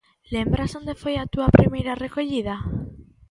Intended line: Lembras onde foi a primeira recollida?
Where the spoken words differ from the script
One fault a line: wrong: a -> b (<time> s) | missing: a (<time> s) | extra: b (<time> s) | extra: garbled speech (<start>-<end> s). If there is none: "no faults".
extra: túa (1.3 s)